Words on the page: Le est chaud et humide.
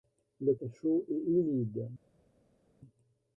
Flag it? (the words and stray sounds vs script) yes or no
no